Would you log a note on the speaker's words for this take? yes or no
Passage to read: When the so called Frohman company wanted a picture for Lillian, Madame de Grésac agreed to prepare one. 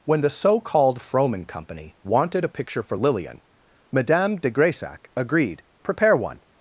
yes